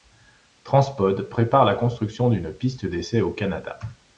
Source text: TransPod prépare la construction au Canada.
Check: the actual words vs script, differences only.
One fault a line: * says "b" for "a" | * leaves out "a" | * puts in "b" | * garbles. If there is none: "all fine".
* puts in "d'une piste d'essai"